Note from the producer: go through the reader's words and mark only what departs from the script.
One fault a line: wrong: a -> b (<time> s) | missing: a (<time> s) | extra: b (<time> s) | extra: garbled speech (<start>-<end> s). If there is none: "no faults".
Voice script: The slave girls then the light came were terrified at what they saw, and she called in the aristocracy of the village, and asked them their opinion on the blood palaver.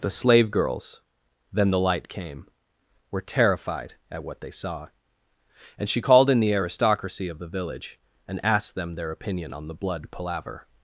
no faults